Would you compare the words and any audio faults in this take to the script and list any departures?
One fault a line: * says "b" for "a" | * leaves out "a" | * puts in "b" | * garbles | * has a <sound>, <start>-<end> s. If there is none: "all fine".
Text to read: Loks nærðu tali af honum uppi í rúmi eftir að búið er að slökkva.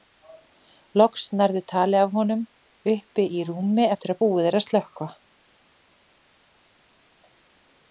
all fine